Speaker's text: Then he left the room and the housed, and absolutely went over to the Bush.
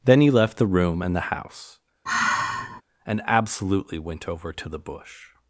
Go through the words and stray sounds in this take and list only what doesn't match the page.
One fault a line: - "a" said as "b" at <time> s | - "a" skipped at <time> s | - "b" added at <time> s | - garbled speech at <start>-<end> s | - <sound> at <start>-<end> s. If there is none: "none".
- "housed" said as "house" at 1.3 s
- sigh at 2.1-2.8 s